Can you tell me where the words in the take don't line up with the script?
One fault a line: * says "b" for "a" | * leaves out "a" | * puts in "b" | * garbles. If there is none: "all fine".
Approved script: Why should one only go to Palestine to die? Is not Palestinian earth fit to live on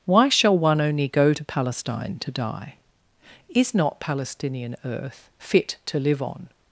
* says "shall" for "should"